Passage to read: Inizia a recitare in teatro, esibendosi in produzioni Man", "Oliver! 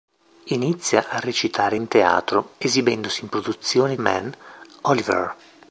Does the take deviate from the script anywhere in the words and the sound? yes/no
no